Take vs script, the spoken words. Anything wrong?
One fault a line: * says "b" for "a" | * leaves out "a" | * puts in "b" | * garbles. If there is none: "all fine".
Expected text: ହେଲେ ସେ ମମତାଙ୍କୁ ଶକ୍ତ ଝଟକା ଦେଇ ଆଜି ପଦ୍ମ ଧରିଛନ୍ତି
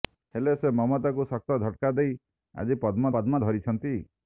* puts in "ପଦ୍ମ"